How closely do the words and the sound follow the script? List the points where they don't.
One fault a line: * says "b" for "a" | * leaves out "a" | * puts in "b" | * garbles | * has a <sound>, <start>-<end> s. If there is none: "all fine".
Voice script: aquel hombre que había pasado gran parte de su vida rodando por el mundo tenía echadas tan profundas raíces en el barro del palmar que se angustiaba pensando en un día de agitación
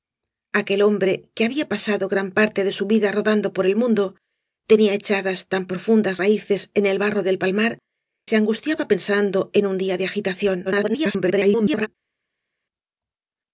* leaves out "que"
* garbles